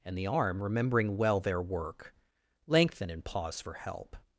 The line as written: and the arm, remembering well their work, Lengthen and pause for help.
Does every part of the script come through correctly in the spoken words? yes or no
yes